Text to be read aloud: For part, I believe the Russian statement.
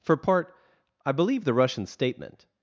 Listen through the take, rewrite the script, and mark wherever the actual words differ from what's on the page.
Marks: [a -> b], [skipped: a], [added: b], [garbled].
For part, I believe the Russian statement.